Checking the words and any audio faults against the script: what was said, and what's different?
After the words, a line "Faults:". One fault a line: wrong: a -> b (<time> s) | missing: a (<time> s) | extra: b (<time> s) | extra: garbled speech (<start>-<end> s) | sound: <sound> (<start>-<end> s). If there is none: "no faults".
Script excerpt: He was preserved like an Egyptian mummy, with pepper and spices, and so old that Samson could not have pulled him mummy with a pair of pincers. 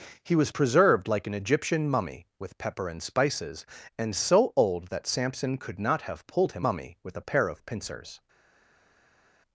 He was preserved like an Egyptian mummy, with pepper and spices, and so old that Samson could not have pulled him mummy with a pair of pincers.
Faults:
no faults